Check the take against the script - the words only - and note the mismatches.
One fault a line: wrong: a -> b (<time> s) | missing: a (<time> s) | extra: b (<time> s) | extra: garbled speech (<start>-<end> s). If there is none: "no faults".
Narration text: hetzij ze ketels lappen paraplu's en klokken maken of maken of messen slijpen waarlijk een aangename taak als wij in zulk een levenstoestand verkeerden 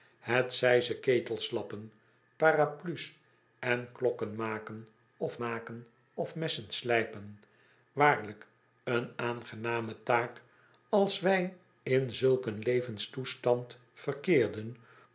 no faults